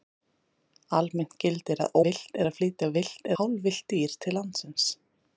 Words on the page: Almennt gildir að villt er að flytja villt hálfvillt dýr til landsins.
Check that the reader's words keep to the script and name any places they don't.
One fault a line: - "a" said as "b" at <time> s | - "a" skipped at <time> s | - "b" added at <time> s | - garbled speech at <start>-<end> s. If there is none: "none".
none